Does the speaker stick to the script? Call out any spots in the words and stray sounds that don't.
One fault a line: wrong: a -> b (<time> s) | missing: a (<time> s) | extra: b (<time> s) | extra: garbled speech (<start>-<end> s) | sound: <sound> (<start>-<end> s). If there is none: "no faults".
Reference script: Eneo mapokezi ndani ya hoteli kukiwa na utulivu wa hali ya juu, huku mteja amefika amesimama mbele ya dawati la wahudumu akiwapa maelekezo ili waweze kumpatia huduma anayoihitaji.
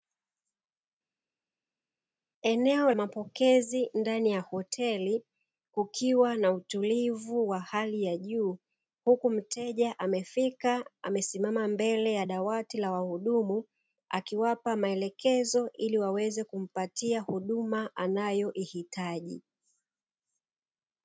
no faults